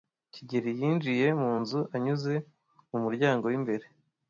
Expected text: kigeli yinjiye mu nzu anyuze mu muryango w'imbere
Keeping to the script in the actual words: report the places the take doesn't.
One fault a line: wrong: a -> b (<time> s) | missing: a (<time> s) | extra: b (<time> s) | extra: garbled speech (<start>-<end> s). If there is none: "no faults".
no faults